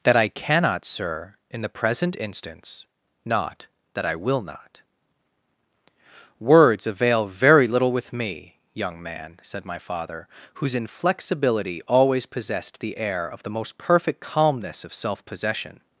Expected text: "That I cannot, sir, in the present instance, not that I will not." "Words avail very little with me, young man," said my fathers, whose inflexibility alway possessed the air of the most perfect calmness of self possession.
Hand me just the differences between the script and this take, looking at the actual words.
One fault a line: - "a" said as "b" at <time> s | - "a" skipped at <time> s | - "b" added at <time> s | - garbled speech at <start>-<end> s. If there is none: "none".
- "fathers" said as "father" at 9.8 s
- "alway" said as "always" at 11.9 s